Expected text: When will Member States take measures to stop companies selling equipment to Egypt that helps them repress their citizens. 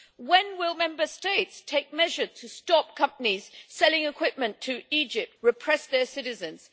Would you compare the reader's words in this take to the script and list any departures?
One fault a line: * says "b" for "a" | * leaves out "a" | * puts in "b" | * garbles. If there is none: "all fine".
* leaves out "that helps them"